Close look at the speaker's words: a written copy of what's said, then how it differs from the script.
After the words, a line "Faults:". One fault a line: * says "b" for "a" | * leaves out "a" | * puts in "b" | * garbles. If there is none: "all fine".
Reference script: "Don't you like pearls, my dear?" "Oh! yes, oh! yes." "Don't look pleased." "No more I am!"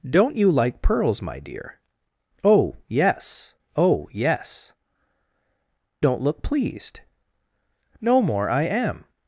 "Don't you like pearls, my dear?" "Oh! yes, oh! yes." "Don't look pleased." "No more I am!"
Faults:
all fine